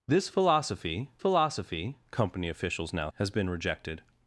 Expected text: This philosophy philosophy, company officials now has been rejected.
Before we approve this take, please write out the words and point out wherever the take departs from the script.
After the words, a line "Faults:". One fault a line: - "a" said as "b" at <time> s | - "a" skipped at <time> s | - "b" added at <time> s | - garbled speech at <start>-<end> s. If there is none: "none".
This philosophy philosophy, company officials now has been rejected.
Faults:
none